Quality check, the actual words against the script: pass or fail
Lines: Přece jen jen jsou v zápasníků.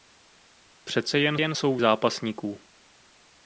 pass